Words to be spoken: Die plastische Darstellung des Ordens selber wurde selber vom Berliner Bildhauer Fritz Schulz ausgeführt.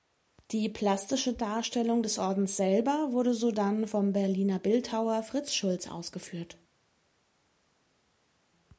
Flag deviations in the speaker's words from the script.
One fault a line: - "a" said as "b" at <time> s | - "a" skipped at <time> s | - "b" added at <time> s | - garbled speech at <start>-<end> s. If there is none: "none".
- "selber" said as "sodann" at 3.4 s